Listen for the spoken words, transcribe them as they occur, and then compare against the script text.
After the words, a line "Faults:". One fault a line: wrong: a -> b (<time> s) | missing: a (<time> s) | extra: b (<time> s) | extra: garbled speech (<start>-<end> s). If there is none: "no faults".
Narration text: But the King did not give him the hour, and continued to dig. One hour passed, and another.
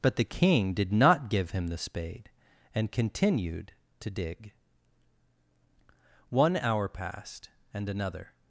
But the King did not give him the spade, and continued to dig. One hour passed, and another.
Faults:
wrong: hour -> spade (1.8 s)